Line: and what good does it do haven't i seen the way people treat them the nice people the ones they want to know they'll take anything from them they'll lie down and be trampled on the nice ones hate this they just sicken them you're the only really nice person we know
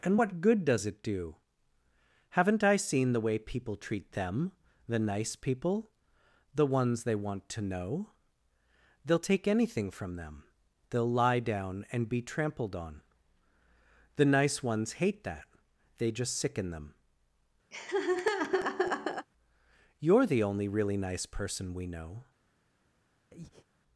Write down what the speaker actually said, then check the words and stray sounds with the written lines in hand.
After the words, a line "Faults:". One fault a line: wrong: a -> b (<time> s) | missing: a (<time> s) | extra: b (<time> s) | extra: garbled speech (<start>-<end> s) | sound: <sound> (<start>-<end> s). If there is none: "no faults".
and what good does it do haven't i seen the way people treat them the nice people the ones they want to know they'll take anything from them they'll lie down and be trampled on the nice ones hate that they just sicken them you're the only really nice person we know
Faults:
wrong: this -> that (15.2 s)
sound: laugh (17.7-19.3 s)
sound: breath (23.3-23.7 s)